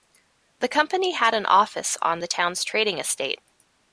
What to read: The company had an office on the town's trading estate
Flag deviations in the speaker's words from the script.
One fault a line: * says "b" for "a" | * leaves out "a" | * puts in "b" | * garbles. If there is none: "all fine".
all fine